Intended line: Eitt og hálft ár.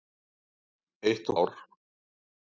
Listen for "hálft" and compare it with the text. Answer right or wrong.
wrong